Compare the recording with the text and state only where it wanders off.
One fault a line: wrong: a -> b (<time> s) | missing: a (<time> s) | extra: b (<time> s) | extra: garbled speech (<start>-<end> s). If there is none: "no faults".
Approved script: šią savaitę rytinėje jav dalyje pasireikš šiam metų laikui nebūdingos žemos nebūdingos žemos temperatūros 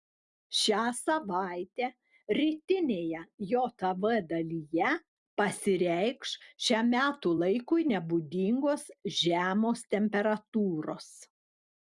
missing: nebūdingos žemos (9.8 s)